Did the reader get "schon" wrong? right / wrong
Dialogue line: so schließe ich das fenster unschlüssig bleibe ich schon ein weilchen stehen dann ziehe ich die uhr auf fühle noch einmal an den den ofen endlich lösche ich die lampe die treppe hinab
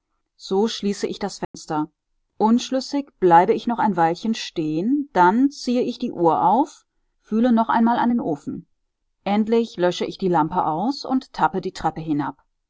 wrong